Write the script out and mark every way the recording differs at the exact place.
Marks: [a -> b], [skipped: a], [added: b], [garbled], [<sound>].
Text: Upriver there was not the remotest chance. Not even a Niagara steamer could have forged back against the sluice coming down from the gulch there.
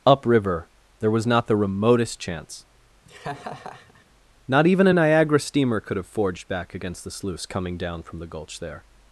Upriver there was not the remotest chance. [laugh] Not even a Niagara steamer could have forged back against the sluice coming down from the gulch there.